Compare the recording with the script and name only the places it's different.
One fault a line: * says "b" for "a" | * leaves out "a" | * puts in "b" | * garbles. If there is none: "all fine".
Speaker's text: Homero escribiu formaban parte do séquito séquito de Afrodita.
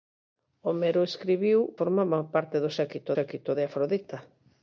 all fine